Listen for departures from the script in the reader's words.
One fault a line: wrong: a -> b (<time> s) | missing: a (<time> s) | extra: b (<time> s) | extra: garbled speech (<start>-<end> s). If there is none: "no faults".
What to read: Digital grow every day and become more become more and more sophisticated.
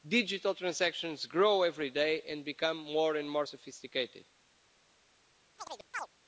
extra: transactions (0.6 s)
missing: become more (3.1 s)